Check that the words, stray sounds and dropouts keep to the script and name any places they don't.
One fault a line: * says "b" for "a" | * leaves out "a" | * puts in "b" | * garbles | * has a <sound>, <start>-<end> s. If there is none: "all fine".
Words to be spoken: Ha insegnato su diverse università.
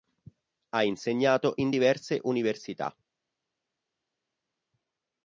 * says "in" for "su"